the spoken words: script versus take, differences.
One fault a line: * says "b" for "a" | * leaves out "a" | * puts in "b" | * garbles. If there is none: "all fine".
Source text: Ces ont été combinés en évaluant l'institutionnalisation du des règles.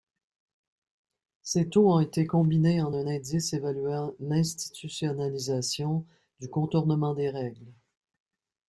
* puts in "taux"
* puts in "un indice"
* puts in "contournement"